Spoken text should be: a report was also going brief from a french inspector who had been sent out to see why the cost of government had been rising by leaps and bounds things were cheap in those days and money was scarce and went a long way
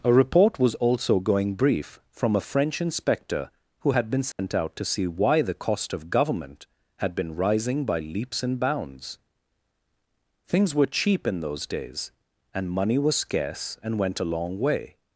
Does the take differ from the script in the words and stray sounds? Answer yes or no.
yes